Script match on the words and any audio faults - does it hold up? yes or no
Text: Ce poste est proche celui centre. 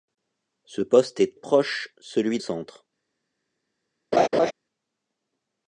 no